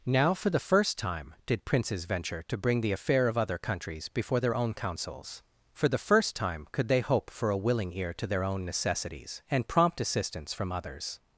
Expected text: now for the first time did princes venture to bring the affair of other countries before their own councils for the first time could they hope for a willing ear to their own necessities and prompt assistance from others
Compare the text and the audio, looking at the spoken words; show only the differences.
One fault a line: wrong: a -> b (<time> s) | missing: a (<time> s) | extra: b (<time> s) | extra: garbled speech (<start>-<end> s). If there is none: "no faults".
no faults